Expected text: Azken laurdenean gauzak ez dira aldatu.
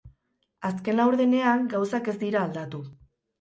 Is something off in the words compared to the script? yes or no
no